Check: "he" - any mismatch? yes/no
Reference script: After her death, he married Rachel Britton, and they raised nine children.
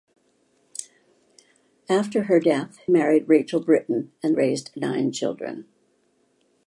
yes